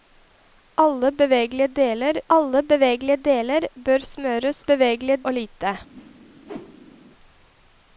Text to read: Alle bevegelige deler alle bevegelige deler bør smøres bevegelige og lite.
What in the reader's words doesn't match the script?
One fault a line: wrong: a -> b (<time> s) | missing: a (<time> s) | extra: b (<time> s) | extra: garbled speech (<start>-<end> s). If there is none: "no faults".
no faults